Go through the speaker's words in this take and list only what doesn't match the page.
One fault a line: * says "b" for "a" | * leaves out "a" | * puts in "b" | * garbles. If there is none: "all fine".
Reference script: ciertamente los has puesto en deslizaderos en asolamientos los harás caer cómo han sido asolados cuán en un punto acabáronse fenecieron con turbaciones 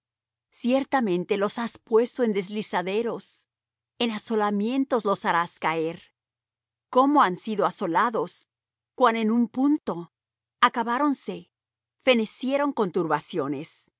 all fine